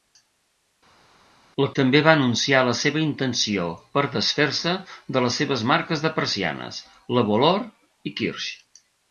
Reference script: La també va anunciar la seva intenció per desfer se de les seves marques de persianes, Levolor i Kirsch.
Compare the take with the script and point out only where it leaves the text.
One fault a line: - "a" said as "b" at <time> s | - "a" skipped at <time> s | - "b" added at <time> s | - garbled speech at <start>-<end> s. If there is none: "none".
none